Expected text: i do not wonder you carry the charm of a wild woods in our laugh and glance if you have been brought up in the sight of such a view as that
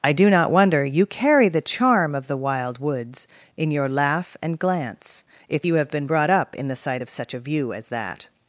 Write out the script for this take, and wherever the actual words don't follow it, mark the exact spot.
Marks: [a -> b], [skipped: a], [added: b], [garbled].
i do not wonder you carry the charm of [a -> the] wild woods in [our -> your] laugh and glance if you have been brought up in the sight of such a view as that